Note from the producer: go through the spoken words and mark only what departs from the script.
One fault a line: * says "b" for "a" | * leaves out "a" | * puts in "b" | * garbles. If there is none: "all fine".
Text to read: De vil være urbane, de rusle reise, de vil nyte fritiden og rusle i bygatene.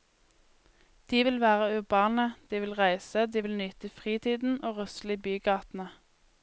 * says "vil" for "rusle"